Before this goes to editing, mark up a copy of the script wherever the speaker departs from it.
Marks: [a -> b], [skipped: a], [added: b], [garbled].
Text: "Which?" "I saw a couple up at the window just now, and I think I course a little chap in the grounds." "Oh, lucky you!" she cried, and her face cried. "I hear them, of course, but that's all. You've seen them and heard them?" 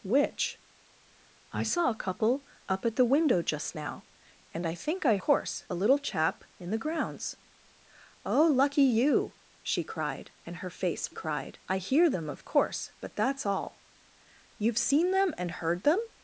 "Which?" "I saw a couple up at the window just now, and I think I course a little chap in the grounds." "Oh, lucky you!" she cried, and her face cried. "I hear them, of course, but that's all. You've seen them and heard them?"